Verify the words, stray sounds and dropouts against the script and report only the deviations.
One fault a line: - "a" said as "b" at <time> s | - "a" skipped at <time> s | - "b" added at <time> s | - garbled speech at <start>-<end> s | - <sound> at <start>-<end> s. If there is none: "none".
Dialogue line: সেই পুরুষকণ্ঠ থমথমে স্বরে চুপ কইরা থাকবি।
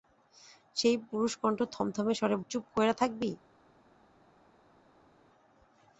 none